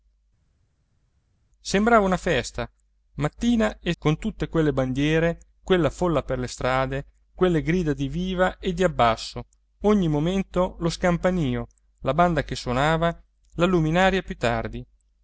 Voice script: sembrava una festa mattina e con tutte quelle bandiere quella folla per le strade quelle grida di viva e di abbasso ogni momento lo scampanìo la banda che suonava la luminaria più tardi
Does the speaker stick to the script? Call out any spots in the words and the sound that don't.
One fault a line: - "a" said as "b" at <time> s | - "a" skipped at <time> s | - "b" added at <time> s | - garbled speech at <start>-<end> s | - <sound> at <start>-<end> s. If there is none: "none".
none